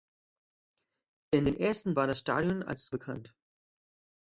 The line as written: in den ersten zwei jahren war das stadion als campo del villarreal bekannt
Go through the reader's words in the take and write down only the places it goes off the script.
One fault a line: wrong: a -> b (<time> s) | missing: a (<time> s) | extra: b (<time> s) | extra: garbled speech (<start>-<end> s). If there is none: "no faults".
missing: zwei jahren (2.0 s)
missing: campo del villarreal (2.9 s)